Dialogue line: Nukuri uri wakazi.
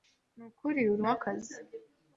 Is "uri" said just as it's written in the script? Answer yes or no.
yes